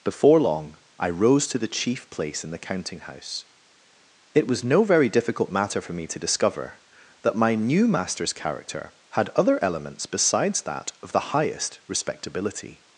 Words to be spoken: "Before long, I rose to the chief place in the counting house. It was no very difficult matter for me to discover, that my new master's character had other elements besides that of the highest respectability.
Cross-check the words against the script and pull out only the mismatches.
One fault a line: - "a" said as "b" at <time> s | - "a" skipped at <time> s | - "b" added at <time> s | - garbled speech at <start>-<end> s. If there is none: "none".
none